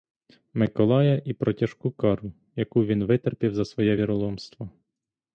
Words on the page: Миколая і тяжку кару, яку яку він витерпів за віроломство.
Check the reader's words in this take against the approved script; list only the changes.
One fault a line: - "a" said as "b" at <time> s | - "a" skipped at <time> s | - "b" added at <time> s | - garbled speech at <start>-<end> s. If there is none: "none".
- "про" added at 1.3 s
- "яку" skipped at 2.9 s
- "своє" added at 3.6 s